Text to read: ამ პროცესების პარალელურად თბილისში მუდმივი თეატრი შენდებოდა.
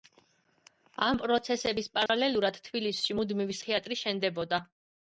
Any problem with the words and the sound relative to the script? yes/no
yes